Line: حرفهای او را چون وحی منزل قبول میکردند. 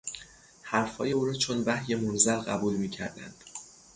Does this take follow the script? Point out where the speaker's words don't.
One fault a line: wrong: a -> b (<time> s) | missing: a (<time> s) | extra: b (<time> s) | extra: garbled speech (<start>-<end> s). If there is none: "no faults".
no faults